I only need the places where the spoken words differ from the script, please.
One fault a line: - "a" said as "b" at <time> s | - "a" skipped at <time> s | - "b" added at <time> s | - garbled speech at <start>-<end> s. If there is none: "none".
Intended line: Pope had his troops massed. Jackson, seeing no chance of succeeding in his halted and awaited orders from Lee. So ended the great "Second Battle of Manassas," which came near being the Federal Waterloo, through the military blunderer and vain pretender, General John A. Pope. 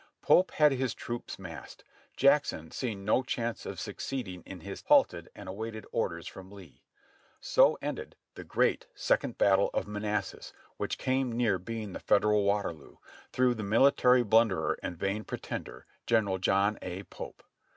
none